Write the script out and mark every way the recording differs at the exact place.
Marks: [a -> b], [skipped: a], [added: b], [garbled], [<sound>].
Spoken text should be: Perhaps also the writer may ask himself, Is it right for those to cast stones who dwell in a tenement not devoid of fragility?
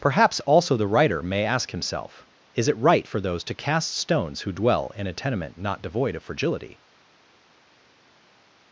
Perhaps also the writer may ask himself, Is it right for those to cast stones who dwell in a tenement not devoid of fragility?